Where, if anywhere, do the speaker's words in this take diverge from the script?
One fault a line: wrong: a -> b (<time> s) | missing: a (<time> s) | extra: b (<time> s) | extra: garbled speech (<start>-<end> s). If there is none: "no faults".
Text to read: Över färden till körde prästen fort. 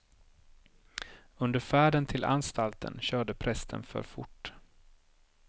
wrong: Över -> Under (1.4 s)
extra: anstalten (2.2 s)
extra: för (3.8 s)